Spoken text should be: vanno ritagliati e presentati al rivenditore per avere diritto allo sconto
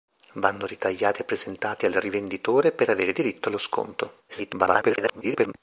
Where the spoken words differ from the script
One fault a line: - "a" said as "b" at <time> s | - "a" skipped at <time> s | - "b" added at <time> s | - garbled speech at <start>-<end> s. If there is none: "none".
- garbled speech at 4.3-5.5 s